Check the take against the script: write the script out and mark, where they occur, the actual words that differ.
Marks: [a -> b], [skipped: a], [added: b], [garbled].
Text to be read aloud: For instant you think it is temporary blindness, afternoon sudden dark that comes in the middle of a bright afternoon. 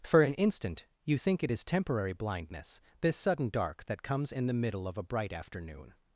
For [added: an] instant you think it is temporary blindness, [afternoon -> this] sudden dark that comes in the middle of a bright afternoon.